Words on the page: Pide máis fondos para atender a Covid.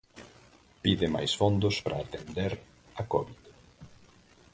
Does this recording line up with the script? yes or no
yes